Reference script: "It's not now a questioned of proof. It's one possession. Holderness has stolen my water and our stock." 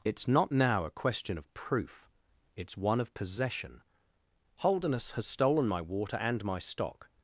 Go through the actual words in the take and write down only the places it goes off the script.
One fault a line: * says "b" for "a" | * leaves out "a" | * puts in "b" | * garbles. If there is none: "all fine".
* says "question" for "questioned"
* puts in "of"
* says "my" for "our"